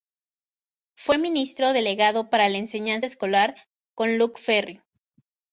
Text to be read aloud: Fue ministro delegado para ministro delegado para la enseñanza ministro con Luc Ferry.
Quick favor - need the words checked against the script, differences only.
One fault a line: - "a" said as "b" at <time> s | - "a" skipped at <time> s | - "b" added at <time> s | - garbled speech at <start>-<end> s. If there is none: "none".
- "ministro delegado para" skipped at 2.5 s
- "ministro" said as "escolar" at 3.0 s